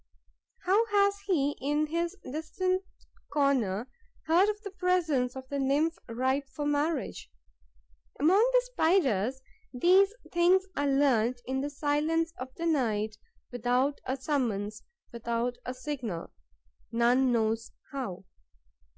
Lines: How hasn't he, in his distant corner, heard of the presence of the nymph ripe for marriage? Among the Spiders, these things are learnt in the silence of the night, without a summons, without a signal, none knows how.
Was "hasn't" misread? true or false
true